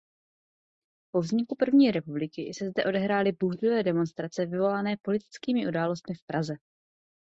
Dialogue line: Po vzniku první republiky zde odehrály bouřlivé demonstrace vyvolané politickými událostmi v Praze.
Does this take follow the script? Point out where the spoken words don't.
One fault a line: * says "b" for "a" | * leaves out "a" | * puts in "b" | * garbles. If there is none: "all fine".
* puts in "se"